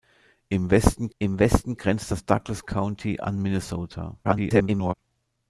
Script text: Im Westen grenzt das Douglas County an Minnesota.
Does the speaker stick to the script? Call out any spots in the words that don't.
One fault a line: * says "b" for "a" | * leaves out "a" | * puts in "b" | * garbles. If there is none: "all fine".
* puts in "im Westen"
* garbles